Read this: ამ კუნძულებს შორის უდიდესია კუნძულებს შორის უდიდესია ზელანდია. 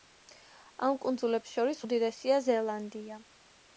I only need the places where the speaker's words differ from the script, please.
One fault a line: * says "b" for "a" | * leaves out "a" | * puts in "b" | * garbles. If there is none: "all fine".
* leaves out "კუნძულებს შორის უდიდესია"